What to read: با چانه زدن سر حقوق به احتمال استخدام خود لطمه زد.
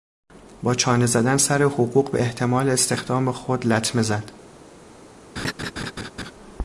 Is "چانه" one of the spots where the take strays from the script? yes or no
no